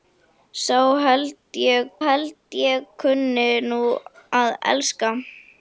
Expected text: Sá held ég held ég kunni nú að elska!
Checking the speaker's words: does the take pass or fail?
pass